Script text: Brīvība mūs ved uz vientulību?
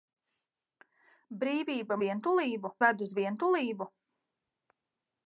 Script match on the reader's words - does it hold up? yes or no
no